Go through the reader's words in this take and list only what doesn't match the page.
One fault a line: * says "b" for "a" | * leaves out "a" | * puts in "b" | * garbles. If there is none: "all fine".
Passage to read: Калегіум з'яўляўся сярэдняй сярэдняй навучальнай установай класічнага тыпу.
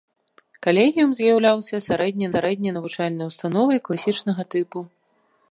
all fine